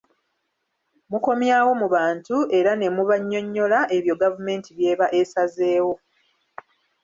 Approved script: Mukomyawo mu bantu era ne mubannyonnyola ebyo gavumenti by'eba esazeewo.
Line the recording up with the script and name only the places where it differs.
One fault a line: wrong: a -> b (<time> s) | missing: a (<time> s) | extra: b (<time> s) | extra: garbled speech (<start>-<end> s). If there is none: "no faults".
no faults